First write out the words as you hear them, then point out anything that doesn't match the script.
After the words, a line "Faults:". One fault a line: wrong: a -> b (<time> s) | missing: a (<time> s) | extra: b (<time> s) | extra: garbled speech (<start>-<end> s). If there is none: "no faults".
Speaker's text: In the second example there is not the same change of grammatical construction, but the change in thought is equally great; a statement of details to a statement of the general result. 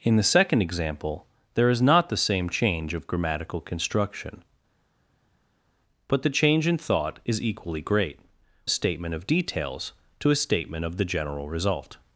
In the second example there is not the same change of grammatical construction, but the change in thought is equally great; a statement of details to a statement of the general result.
Faults:
no faults